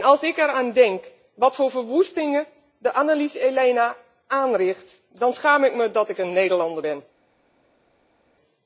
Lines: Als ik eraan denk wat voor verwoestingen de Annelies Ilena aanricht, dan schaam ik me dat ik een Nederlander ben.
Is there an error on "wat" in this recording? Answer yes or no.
no